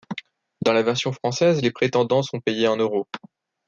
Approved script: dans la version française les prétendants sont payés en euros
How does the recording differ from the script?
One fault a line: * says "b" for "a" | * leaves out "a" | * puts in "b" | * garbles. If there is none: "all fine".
all fine